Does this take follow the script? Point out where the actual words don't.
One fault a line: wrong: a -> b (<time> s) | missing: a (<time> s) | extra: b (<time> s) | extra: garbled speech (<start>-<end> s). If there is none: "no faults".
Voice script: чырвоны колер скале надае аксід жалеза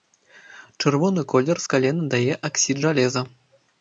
no faults